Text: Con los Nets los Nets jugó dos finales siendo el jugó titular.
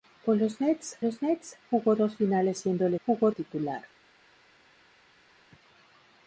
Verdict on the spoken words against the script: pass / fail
pass